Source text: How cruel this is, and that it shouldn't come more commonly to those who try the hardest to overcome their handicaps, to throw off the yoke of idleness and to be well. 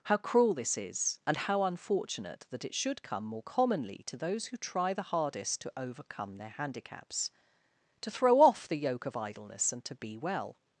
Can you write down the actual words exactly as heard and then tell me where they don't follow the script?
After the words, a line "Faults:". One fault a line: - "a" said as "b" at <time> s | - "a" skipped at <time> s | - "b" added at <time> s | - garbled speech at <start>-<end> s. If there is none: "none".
How cruel this is, and how unfortunate that it should come more commonly to those who try the hardest to overcome their handicaps, to throw off the yoke of idleness and to be well.
Faults:
- "how unfortunate" added at 1.4 s
- "shouldn't" said as "should" at 2.7 s